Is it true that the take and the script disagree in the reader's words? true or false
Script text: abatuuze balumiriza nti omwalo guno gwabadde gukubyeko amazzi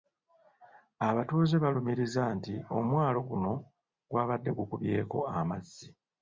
false